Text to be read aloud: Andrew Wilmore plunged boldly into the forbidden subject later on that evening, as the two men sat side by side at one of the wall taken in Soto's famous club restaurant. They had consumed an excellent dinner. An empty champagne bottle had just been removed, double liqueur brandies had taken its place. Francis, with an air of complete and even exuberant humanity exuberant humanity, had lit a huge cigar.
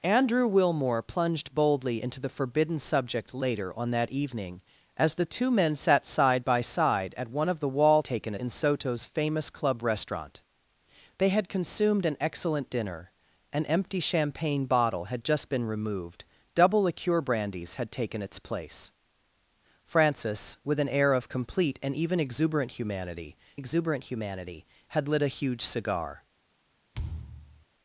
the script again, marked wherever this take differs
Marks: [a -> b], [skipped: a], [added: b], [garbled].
Andrew Wilmore plunged boldly into the forbidden subject later on that evening, as the two men sat side by side at one of the wall taken in Soto's famous club restaurant. They had consumed an excellent dinner. An empty champagne bottle had just been removed, double liqueur brandies had taken its place. Francis, with an air of complete and even exuberant humanity exuberant humanity, had lit a huge cigar.